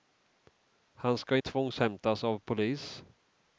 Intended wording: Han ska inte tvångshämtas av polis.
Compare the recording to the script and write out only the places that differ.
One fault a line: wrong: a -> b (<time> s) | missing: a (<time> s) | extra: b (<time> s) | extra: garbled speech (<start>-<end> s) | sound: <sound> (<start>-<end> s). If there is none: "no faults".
missing: inte (1.4 s)